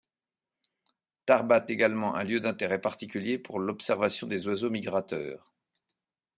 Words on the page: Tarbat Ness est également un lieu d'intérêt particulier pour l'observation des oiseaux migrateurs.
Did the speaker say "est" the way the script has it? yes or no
no